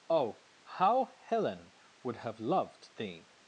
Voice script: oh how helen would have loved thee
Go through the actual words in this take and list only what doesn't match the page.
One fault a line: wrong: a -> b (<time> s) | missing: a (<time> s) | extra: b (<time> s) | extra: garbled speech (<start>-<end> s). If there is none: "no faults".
no faults